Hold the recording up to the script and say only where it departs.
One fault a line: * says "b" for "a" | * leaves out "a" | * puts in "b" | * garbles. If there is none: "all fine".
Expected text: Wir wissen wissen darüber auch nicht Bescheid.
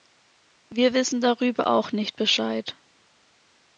* leaves out "wissen"